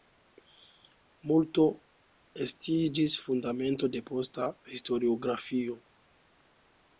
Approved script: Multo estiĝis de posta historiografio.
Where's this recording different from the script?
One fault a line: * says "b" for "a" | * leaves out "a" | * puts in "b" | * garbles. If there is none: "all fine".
* puts in "fundamento"